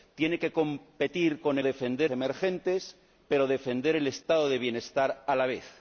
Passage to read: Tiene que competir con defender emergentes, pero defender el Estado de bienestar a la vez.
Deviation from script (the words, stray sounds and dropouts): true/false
false